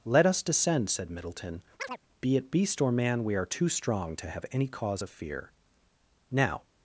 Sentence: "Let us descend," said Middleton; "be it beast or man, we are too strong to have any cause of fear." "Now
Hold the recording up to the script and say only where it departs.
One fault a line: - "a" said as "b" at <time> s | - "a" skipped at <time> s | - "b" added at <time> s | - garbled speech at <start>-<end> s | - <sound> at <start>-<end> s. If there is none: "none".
- chirp at 1.8-2.0 s